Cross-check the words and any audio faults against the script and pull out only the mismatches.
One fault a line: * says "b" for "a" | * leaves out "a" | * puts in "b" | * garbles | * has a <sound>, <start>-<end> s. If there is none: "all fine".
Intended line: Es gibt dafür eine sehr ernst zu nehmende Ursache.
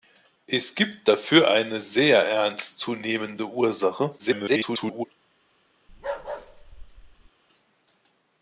* garbles
* has a bark, 5.9-7.3 s